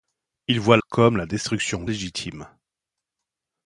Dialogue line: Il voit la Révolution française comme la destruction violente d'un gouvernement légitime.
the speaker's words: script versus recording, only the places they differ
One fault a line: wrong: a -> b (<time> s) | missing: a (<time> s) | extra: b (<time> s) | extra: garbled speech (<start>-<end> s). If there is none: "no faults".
missing: la Révolution française (0.8 s)
missing: violente d'un gouvernement (1.9 s)